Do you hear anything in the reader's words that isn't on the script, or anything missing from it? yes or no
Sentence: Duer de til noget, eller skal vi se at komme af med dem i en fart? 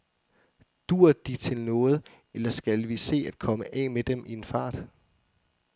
no